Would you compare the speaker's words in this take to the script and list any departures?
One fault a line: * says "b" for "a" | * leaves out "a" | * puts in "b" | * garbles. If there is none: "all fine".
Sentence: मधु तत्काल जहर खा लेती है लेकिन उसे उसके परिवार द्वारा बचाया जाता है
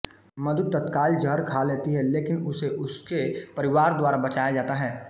all fine